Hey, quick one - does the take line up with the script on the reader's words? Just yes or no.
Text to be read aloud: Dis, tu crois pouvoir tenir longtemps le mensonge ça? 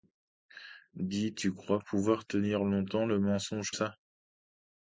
yes